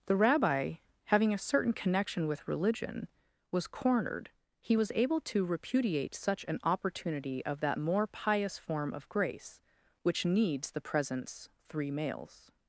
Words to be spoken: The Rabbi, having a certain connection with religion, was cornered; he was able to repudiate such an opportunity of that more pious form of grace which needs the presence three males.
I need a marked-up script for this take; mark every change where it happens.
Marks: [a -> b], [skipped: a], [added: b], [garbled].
The Rabbi, having a certain connection with religion, was cornered; he was able to repudiate such an opportunity of that more pious form of grace which needs the presence three males.